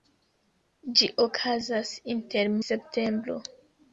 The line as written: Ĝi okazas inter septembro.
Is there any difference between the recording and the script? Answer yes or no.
no